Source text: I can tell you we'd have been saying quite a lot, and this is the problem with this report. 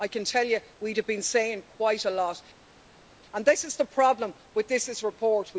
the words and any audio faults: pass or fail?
pass